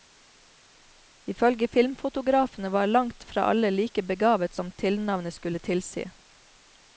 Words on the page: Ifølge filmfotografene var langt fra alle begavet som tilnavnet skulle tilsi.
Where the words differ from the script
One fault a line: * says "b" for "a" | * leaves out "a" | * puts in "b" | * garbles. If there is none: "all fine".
* puts in "like"